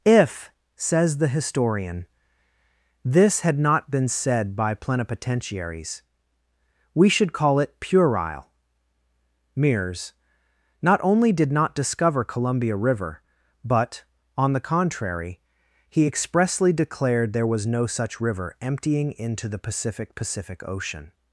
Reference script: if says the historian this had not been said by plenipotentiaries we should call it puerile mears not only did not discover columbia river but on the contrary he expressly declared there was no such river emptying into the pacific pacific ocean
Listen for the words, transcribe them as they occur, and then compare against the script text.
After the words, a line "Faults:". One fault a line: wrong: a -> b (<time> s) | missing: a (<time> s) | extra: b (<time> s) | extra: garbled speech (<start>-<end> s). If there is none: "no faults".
if says the historian this had not been said by plenipotentiaries we should call it puerile mears not only did not discover columbia river but on the contrary he expressly declared there was no such river emptying into the pacific pacific ocean
Faults:
no faults